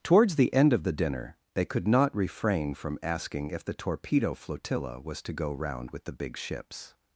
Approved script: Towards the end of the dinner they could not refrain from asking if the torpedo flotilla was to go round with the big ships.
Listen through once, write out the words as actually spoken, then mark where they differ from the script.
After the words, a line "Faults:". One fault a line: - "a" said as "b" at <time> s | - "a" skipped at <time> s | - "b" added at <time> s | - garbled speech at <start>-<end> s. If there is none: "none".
Towards the end of the dinner they could not refrain from asking if the torpedo flotilla was to go round with the big ships.
Faults:
none